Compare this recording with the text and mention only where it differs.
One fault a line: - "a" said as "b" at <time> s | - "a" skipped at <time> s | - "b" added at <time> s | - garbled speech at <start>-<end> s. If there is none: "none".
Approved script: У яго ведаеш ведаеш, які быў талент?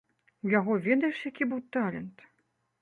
- "ведаеш" skipped at 1.2 s